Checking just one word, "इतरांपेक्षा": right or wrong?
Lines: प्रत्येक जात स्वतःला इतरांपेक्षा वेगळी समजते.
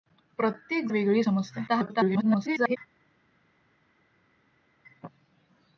wrong